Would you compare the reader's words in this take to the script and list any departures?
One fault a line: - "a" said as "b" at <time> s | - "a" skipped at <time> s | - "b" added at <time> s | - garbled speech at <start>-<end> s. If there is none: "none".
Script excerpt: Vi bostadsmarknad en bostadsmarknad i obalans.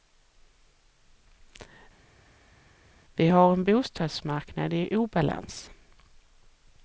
- "bostadsmarknad" said as "har" at 3.3 s